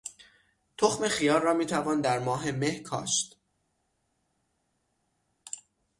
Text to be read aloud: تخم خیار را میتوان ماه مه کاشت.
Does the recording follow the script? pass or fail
fail